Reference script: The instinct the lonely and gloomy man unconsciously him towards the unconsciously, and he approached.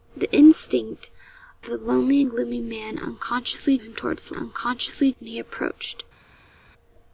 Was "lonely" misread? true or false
false